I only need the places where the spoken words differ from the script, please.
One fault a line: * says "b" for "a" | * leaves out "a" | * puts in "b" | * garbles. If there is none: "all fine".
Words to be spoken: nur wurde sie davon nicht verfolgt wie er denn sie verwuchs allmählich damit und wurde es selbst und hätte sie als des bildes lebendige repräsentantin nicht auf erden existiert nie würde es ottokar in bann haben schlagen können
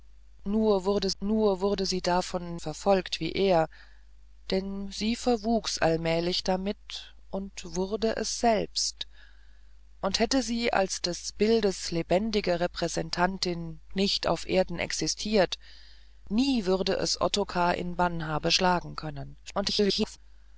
* puts in "nur wurde"
* leaves out "nicht"
* garbles